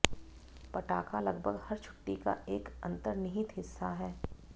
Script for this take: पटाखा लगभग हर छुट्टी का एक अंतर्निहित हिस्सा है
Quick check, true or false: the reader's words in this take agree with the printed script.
true